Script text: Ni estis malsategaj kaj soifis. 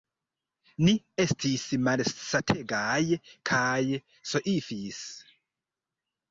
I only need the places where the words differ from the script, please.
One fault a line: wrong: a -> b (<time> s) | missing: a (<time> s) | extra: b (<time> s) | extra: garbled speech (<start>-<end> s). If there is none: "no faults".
no faults